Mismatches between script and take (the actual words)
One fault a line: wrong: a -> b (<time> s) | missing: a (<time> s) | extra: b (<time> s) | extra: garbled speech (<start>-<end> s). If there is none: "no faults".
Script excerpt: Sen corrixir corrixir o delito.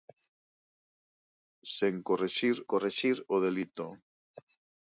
no faults